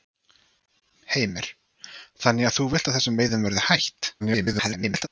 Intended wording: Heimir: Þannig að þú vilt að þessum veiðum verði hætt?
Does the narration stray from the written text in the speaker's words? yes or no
yes